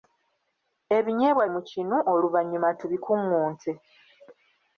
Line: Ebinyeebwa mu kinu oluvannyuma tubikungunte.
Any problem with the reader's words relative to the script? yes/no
no